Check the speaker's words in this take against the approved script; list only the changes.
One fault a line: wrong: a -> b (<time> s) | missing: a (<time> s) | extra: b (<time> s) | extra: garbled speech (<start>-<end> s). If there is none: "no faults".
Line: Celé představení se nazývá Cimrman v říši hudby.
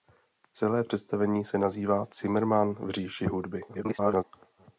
extra: garbled speech (3.7-4.2 s)